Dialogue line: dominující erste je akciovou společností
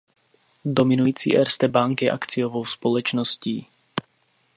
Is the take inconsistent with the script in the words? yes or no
yes